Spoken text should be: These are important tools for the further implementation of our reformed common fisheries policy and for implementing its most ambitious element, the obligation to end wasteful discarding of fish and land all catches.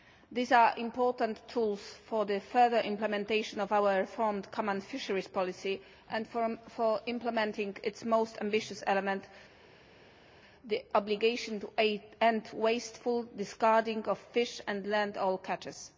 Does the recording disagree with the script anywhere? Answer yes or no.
no